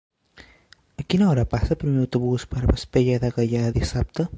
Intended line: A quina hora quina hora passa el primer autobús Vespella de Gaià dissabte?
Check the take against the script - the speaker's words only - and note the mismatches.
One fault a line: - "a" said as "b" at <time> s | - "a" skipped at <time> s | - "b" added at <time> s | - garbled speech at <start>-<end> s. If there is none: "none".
- "quina hora" skipped at 1.4 s
- "per" added at 2.5 s